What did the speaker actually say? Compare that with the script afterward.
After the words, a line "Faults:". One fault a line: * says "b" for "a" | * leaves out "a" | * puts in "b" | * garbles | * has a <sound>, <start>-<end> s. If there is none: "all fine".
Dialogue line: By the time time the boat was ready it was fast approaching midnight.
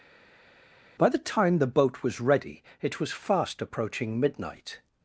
By the time the boat was ready it was fast approaching midnight.
Faults:
* leaves out "time"